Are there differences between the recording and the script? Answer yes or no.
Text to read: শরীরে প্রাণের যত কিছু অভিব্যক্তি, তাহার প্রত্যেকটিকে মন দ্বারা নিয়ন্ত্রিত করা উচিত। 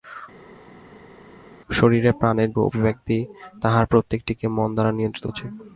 yes